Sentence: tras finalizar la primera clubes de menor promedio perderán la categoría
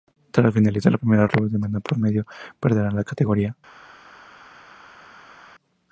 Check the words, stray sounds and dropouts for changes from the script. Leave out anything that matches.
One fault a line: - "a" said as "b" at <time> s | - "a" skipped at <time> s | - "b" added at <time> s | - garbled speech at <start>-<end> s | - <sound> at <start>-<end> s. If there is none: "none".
none